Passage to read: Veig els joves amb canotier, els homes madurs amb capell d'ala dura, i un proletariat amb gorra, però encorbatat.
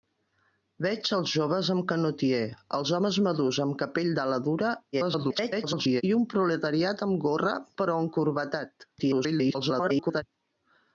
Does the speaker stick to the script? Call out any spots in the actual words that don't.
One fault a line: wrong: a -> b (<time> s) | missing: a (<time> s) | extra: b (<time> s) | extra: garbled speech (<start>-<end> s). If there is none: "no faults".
extra: garbled speech (4.9-6.0 s)
extra: garbled speech (9.0-10.2 s)